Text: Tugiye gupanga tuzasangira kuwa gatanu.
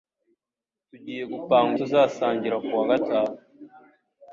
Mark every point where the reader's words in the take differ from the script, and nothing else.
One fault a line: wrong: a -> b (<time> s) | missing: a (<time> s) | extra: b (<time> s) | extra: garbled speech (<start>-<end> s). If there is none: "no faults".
no faults